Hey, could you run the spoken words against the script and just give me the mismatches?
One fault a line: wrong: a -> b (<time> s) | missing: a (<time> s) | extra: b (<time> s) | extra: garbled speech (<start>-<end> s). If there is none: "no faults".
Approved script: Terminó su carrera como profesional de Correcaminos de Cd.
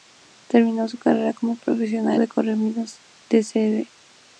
no faults